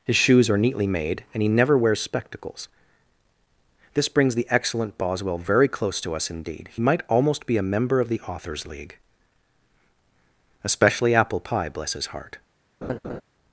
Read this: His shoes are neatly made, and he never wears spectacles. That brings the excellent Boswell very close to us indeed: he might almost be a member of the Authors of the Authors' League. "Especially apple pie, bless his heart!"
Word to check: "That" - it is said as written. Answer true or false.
false